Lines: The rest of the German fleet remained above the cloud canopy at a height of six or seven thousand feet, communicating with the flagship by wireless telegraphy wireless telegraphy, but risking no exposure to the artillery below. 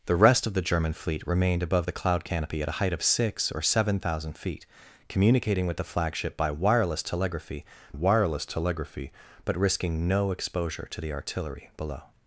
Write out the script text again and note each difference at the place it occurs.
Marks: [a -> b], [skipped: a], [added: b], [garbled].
The rest of the German fleet remained above the cloud canopy at a height of six or seven thousand feet, communicating with the flagship by wireless telegraphy wireless telegraphy, but risking no exposure to the artillery below.